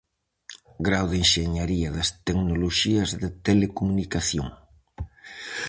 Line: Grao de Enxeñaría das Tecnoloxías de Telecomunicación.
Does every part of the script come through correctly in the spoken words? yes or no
yes